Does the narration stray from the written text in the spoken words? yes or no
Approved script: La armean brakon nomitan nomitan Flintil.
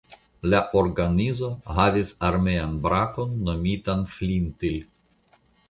yes